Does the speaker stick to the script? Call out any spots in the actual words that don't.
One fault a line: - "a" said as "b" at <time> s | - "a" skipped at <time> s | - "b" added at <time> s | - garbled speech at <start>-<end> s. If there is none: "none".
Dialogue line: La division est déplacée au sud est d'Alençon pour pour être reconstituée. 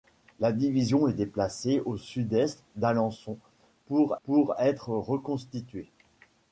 none